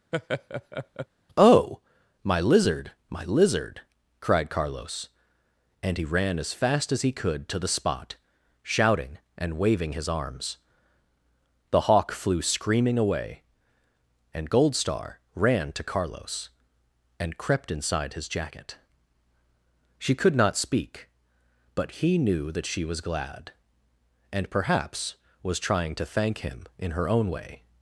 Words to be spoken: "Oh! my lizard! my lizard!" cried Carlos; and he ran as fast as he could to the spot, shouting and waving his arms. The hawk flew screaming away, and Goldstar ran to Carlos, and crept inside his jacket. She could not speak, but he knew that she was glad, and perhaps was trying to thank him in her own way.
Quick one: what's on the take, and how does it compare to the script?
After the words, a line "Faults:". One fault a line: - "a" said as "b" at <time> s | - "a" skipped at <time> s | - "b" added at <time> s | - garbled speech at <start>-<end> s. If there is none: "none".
"Oh! my lizard! my lizard!" cried Carlos; and he ran as fast as he could to the spot, shouting and waving his arms. The hawk flew screaming away, and Goldstar ran to Carlos, and crept inside his jacket. She could not speak, but he knew that she was glad, and perhaps was trying to thank him in her own way.
Faults:
none